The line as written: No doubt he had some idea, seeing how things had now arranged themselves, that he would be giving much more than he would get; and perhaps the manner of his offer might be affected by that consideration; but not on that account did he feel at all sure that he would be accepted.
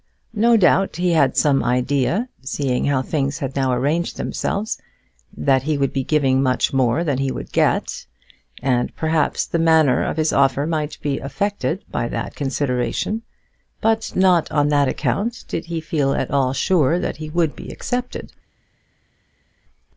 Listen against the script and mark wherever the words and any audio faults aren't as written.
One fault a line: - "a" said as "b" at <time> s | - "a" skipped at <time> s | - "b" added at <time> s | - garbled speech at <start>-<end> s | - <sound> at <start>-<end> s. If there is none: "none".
none